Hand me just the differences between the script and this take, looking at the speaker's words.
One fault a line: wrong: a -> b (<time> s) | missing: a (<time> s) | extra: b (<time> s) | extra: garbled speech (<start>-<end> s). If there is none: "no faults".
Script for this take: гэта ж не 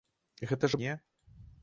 no faults